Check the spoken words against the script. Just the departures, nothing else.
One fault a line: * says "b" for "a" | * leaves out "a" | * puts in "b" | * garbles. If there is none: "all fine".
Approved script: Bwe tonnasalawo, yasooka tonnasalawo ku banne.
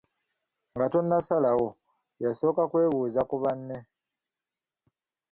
* says "Nga" for "Bwe"
* says "kwebuuza" for "tonnasalawo"